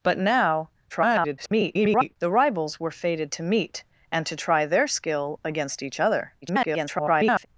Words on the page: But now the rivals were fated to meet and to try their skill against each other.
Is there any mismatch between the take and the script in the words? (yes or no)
yes